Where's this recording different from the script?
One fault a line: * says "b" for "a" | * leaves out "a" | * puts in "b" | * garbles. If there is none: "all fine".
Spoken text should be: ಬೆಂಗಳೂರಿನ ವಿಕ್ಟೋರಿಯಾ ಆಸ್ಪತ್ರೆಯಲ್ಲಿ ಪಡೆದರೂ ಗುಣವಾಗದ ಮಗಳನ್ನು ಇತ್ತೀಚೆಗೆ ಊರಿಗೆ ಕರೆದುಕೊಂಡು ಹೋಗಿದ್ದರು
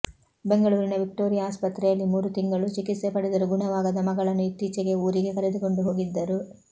* puts in "ಮೂರು ತಿಂಗಳು ಚಿಕಿತ್ಸೆ"